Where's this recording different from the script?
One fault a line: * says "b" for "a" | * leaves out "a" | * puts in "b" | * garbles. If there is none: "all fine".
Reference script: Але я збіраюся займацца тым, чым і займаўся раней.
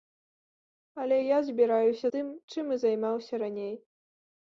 * leaves out "займацца"